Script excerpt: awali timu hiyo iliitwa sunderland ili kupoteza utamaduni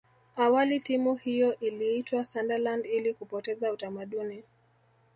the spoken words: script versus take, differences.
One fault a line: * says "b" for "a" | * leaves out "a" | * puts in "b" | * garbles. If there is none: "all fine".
all fine